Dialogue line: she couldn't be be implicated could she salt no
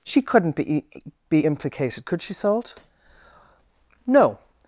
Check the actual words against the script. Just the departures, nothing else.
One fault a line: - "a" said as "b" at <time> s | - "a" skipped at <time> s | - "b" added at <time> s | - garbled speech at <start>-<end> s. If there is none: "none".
none